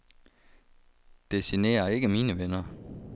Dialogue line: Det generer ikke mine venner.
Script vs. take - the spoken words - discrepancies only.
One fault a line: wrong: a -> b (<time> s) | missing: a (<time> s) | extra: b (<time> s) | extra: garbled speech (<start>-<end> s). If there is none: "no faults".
no faults